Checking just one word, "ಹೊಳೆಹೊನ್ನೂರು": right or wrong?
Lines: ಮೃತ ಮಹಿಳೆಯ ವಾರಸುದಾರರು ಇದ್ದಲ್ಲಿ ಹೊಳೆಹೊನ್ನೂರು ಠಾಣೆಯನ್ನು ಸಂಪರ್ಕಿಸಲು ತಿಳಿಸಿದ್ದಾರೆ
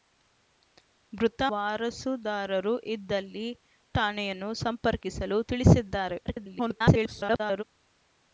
wrong